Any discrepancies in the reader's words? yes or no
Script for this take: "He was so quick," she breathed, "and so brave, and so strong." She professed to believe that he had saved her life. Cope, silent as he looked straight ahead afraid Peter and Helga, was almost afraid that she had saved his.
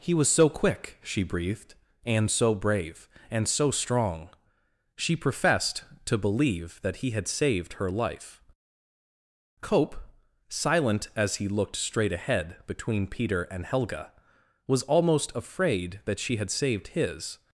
yes